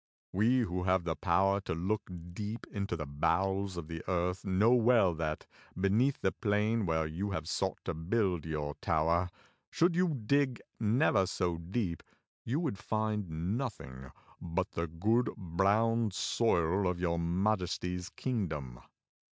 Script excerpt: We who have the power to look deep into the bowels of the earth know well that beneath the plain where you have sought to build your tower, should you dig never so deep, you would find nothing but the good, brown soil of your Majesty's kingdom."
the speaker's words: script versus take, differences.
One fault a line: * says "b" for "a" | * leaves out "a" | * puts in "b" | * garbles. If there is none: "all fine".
all fine